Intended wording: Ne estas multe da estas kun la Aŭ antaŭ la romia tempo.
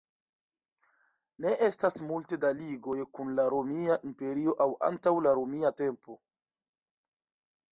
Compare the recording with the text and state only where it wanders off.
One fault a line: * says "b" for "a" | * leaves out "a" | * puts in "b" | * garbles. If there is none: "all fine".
* says "ligoj" for "estas"
* puts in "Romia Imperio"